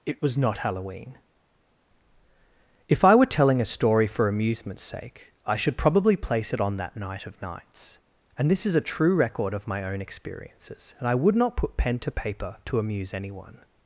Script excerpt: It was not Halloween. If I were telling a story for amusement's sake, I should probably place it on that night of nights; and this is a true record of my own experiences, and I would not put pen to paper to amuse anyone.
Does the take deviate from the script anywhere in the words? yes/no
no